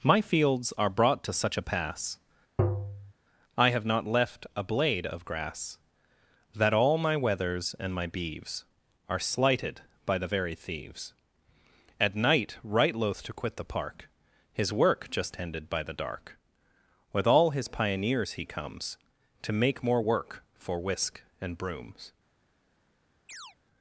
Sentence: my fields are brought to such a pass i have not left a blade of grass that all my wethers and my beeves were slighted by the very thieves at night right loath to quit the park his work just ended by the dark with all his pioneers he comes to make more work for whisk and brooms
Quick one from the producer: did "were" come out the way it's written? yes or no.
no